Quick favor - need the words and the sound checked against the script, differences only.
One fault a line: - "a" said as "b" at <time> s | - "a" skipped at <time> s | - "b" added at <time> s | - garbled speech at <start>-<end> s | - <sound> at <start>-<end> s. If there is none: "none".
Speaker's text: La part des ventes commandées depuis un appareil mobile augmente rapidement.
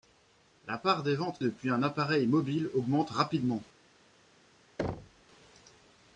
- "commandées" skipped at 1.4 s
- thud at 4.8-5.2 s